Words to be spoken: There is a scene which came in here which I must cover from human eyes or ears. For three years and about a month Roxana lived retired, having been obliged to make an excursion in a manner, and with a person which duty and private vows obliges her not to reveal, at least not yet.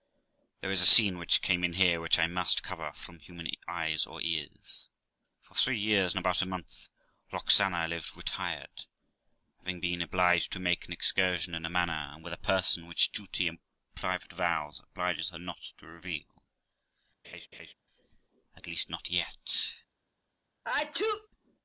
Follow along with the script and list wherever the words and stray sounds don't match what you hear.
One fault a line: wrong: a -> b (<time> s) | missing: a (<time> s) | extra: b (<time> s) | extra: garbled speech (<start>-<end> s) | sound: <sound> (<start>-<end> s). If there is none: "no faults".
sound: laugh (17.2-17.7 s)
sound: sneeze (20.6-21.3 s)